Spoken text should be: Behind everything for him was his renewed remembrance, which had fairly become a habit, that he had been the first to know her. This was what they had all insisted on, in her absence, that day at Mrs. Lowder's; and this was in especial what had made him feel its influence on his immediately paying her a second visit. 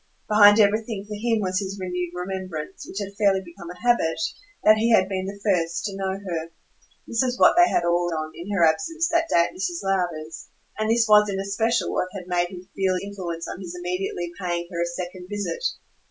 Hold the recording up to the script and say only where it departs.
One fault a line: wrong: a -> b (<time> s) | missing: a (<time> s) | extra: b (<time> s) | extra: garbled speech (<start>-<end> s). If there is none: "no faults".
missing: insisted (8.1 s)
missing: its (12.9 s)